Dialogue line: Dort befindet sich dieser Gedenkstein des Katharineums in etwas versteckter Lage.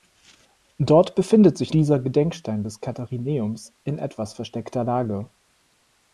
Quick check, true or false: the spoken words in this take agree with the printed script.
true